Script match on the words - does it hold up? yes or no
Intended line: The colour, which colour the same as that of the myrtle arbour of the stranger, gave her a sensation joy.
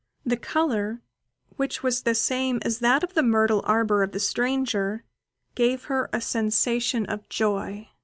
no